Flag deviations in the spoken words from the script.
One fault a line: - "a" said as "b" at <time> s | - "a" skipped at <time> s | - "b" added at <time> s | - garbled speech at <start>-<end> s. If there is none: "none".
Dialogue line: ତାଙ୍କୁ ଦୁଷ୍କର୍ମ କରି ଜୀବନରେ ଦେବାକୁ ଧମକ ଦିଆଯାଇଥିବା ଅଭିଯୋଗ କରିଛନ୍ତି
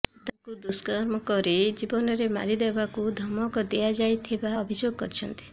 - "ମାରି" added at 2.3 s